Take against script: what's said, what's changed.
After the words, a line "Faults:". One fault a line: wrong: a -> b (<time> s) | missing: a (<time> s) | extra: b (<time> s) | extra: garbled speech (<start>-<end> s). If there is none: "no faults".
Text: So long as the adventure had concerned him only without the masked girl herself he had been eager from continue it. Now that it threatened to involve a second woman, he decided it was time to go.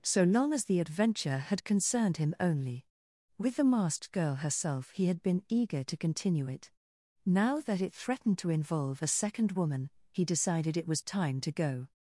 So long as the adventure had concerned him only with the masked girl herself he had been eager to continue it. Now that it threatened to involve a second woman, he decided it was time to go.
Faults:
wrong: without -> with (3.4 s)
wrong: from -> to (5.8 s)